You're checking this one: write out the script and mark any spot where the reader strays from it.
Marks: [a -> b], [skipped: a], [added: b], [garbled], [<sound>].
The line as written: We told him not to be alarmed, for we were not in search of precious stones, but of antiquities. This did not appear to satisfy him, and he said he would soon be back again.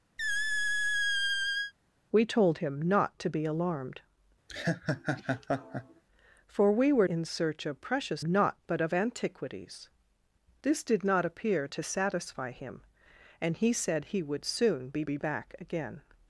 [squeak] We told him not to be alarmed, [laugh] for we were [skipped: not] in search of precious [stones, -> not] but of antiquities. This did not appear to satisfy him, and he said he would soon be [added: be] back again.